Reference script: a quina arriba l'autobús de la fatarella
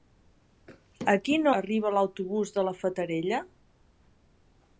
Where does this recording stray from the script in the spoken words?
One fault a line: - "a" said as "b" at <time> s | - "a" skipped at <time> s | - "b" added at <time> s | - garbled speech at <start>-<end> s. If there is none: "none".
none